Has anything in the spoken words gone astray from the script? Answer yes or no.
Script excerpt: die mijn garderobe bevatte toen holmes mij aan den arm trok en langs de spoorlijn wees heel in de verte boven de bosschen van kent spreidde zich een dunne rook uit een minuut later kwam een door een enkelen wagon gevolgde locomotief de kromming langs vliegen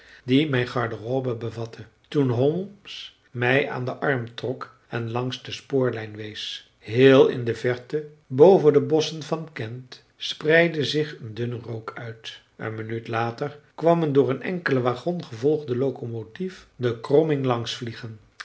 no